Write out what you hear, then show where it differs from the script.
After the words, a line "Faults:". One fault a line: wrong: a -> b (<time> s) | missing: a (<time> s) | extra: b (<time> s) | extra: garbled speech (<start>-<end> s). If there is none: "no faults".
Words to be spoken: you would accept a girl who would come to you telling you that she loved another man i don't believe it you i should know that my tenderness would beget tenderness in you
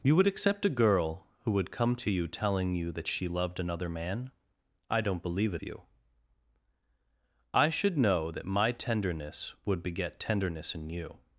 you would accept a girl who would come to you telling you that she loved another man i don't believe it you i should know that my tenderness would beget tenderness in you
Faults:
no faults